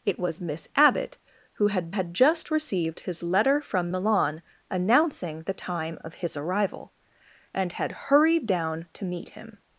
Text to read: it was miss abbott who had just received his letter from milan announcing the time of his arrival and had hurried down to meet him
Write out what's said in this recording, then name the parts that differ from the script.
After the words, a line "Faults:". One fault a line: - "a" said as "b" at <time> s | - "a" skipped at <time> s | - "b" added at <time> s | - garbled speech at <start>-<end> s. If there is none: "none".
it was miss abbott who had had just received his letter from milan announcing the time of his arrival and had hurried down to meet him
Faults:
- "had" added at 1.9 s